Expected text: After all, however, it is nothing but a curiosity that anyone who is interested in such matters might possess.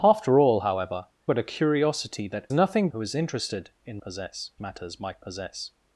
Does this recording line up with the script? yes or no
no